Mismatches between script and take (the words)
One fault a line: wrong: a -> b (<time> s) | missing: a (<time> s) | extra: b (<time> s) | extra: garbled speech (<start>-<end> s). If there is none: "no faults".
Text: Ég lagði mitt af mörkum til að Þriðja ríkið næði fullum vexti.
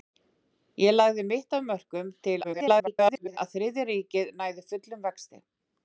extra: garbled speech (2.4-3.4 s)